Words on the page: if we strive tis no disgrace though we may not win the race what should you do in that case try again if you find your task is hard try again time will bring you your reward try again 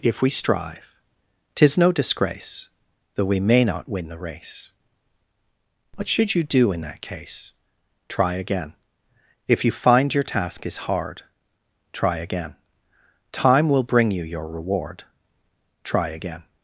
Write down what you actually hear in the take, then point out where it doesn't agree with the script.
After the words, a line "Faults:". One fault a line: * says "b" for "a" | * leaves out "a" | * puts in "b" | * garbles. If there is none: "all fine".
if we strive tis no disgrace though we may not win the race what should you do in that case try again if you find your task is hard try again time will bring you your reward try again
Faults:
all fine